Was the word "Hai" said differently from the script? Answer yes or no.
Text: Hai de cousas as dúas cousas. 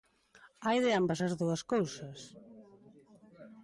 no